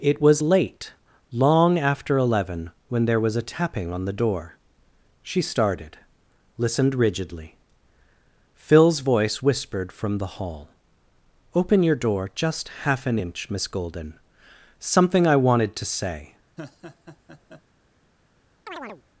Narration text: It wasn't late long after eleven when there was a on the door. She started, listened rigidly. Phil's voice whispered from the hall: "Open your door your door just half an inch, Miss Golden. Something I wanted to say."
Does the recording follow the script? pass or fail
fail